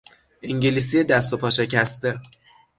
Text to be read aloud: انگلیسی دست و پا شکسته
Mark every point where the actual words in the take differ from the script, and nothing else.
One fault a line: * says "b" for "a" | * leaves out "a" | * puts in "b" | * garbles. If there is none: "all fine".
all fine